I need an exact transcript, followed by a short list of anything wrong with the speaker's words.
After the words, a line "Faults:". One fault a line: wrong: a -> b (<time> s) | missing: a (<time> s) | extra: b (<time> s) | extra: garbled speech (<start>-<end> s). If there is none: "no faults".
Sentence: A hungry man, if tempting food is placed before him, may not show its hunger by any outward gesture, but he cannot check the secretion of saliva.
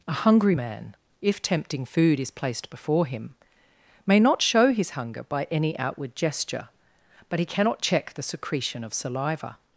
A hungry man, if tempting food is placed before him, may not show his hunger by any outward gesture, but he cannot check the secretion of saliva.
Faults:
wrong: its -> his (4.7 s)